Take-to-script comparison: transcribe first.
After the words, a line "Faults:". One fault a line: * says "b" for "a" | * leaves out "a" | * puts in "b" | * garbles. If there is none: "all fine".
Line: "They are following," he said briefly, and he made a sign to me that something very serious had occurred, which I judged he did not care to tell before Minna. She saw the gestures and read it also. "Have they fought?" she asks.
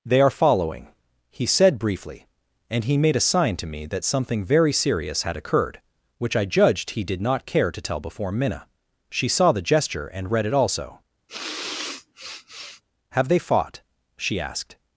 "They are following," he said briefly, and he made a sign to me that something very serious had occurred, which I judged he did not care to tell before Minna. She saw the gesture and read it also. "Have they fought?" she asked.
Faults:
* says "gesture" for "gestures"
* says "asked" for "asks"